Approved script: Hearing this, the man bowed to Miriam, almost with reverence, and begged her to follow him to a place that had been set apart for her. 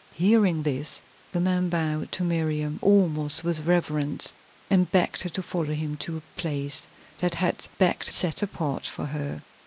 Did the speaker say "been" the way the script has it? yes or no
no